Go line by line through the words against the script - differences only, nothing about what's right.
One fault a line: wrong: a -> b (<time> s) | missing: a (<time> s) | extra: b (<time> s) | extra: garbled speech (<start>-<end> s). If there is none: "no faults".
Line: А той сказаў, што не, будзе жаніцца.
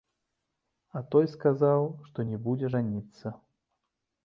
no faults